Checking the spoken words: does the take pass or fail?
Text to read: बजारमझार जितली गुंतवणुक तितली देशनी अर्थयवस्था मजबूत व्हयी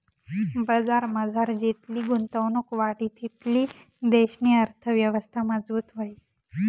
fail